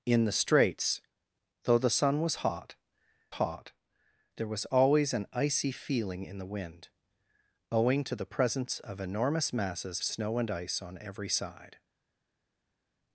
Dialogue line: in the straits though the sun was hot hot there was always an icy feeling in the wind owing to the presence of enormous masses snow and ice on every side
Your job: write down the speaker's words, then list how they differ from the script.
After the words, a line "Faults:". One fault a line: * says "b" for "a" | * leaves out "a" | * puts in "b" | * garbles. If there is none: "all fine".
in the straits though the sun was hot hot there was always an icy feeling in the wind owing to the presence of enormous masses snow and ice on every side
Faults:
all fine